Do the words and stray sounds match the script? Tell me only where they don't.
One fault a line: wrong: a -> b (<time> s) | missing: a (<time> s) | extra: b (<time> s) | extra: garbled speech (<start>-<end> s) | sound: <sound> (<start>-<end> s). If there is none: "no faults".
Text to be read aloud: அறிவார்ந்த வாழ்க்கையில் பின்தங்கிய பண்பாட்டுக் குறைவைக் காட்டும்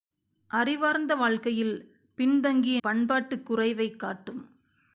no faults